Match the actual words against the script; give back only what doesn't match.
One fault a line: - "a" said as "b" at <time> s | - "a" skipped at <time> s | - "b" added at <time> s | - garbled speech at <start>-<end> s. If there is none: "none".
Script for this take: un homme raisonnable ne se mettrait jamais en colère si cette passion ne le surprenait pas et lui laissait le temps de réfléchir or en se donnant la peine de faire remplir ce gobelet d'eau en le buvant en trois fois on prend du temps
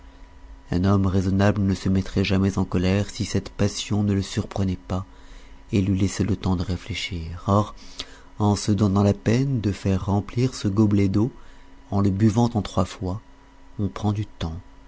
none